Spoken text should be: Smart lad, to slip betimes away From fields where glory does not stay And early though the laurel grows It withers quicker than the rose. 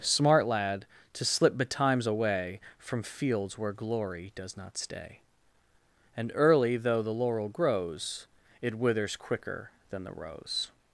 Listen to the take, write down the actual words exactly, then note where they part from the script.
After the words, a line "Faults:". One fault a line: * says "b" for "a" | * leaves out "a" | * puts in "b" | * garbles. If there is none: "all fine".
Smart lad, to slip betimes away From fields where glory does not stay And early though the laurel grows It withers quicker than the rose.
Faults:
all fine